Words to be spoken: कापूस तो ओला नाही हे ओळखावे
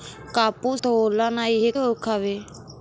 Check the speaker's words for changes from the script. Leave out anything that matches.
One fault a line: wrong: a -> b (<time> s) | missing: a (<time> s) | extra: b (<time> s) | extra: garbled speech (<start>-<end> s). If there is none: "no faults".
no faults